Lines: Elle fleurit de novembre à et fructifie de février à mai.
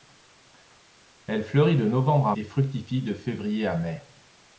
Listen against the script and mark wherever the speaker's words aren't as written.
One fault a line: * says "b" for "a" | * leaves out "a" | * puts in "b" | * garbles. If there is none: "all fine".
all fine